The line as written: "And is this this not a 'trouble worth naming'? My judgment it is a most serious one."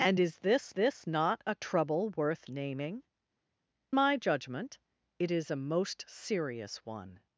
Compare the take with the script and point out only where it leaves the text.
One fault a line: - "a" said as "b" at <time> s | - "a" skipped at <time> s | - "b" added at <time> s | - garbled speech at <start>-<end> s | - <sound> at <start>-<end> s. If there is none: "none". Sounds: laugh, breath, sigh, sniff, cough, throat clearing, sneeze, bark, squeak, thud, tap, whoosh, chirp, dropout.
none